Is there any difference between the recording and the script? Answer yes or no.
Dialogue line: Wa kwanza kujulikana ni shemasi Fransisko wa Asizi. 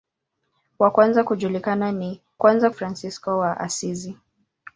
yes